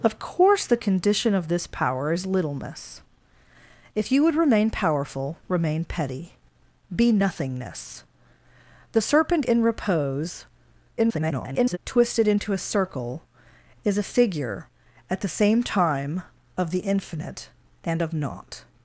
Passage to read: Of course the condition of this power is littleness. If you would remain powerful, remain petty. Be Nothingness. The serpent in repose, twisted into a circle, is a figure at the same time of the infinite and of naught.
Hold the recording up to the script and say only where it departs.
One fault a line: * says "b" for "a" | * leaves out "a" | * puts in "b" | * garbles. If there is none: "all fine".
* garbles